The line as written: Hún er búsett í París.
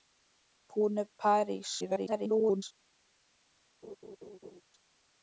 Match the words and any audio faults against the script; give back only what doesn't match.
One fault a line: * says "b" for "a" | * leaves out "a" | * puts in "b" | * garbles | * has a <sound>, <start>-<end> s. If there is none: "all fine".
* leaves out "búsett"
* garbles
* has a laugh, 3.8-4.6 s